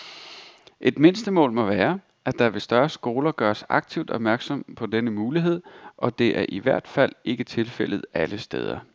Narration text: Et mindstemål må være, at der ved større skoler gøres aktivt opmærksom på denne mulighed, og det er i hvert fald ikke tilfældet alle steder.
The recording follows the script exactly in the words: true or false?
true